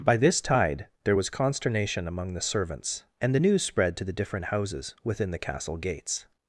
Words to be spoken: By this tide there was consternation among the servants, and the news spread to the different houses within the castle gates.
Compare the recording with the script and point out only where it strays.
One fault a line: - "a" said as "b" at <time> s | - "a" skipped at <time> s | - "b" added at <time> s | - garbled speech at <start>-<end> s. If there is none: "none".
none